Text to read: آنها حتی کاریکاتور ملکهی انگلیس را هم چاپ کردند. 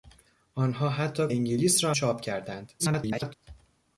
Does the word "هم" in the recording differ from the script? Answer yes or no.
yes